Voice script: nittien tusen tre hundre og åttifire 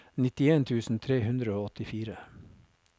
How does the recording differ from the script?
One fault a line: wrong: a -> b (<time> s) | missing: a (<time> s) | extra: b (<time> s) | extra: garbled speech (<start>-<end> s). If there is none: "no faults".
no faults